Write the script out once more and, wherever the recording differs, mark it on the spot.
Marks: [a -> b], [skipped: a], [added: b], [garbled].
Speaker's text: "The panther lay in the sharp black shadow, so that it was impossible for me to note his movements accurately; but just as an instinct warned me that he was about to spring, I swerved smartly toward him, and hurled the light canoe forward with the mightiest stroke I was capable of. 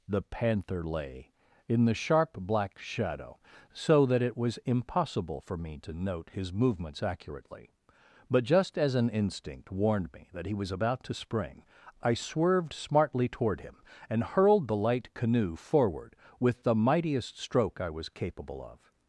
"The panther lay in the sharp black shadow, so that it was impossible for me to note his movements accurately; but just as an instinct warned me that he was about to spring, I swerved smartly toward him, and hurled the light canoe forward with the mightiest stroke I was capable of.